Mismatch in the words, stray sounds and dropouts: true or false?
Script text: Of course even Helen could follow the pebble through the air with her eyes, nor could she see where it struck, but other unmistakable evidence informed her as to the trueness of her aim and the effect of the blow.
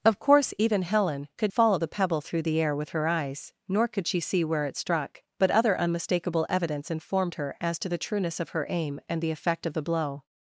false